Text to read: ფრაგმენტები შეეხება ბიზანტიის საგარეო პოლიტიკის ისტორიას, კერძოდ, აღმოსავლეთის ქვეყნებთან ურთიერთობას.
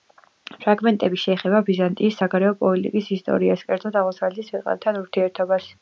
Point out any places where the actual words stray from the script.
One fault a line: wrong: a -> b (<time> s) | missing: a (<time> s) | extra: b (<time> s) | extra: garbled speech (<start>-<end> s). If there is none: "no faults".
no faults